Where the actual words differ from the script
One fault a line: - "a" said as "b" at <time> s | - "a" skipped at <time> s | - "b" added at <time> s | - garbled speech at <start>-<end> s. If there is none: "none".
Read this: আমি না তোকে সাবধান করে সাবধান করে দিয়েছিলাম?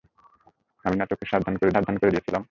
none